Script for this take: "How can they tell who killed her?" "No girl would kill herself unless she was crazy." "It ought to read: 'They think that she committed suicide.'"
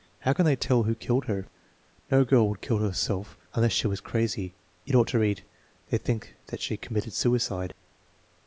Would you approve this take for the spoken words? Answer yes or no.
yes